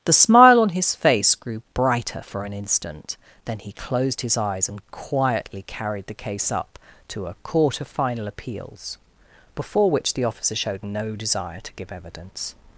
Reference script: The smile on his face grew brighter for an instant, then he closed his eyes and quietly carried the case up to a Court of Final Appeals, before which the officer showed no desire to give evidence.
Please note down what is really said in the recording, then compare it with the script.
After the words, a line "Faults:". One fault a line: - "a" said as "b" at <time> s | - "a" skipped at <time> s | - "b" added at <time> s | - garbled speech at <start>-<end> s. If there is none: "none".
The smile on his face grew brighter for an instant, then he closed his eyes and quietly carried the case up to a Court of Final Appeals, before which the officer showed no desire to give evidence.
Faults:
none